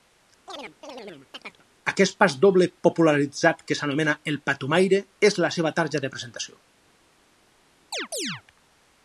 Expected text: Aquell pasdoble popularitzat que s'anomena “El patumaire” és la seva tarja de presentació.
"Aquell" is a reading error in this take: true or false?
true